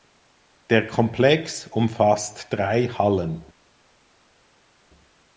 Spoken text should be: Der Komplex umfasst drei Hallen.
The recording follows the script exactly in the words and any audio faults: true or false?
true